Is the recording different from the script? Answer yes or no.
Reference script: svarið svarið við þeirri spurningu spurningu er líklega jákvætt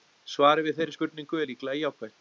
yes